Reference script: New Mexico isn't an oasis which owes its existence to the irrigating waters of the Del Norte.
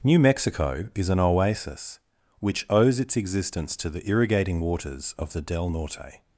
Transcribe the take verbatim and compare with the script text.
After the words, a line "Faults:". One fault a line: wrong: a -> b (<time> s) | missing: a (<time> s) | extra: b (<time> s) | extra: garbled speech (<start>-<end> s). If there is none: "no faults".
New Mexico is an oasis which owes its existence to the irrigating waters of the Del Norte.
Faults:
wrong: isn't -> is (0.9 s)